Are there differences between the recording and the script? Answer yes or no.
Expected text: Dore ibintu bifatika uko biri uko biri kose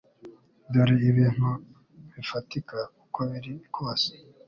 yes